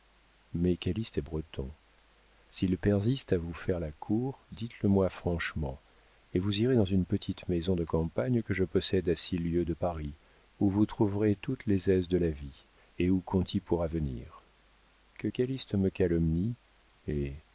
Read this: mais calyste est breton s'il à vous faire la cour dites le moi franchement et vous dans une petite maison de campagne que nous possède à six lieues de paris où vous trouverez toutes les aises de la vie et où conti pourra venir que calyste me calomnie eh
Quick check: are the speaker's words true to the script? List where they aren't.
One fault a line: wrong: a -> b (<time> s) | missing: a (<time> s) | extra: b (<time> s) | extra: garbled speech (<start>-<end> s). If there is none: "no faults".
extra: persiste (2.8 s)
extra: irez (6.6 s)
wrong: nous -> je (8.5 s)